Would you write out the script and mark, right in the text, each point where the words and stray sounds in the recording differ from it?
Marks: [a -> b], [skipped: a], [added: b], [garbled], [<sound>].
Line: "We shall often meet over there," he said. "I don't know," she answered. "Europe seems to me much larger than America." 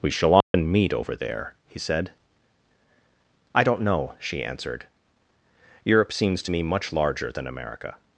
"We shall often [dropout] meet over there," he said. "I don't know," she answered. "Europe seems to me much larger than America."